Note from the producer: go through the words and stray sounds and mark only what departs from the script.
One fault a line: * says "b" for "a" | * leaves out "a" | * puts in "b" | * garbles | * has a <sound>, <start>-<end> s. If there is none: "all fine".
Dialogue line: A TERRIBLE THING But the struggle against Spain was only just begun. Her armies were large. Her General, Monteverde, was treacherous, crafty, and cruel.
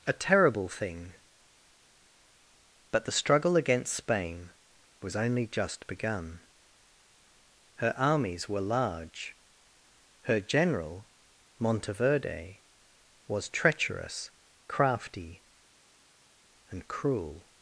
all fine